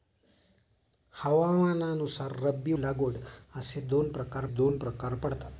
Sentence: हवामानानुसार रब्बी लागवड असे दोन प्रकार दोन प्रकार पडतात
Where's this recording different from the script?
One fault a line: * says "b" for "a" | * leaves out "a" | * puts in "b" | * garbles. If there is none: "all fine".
all fine